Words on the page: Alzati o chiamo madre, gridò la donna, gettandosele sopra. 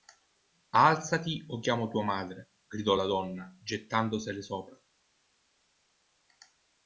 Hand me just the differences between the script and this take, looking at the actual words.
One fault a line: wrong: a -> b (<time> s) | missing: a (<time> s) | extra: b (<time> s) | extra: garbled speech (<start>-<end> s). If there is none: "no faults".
extra: tua (1.9 s)